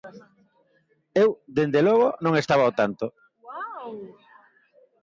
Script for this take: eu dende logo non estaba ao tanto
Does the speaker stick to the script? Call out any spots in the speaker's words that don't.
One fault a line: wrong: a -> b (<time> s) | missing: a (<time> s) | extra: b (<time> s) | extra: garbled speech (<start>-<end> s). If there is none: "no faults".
no faults